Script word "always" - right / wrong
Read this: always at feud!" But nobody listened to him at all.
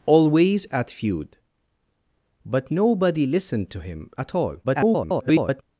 right